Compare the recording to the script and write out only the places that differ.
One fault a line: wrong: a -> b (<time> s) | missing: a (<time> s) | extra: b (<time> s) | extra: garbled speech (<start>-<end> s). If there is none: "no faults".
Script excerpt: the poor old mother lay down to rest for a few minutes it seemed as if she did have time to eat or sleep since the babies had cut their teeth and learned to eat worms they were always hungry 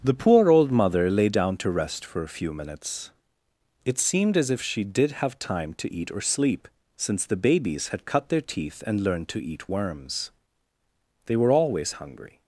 no faults